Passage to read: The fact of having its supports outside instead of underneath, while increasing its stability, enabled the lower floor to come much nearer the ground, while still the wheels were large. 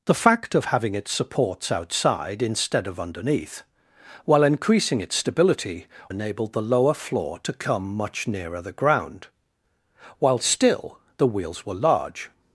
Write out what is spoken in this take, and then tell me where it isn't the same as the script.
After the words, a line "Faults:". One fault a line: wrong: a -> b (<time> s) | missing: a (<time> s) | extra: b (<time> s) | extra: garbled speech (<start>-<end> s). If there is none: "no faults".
The fact of having its supports outside instead of underneath, while increasing its stability, enabled the lower floor to come much nearer the ground, while still the wheels were large.
Faults:
no faults